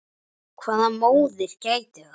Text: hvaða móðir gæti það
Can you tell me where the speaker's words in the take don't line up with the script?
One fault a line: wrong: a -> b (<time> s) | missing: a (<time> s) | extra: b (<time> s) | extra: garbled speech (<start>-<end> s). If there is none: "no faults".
no faults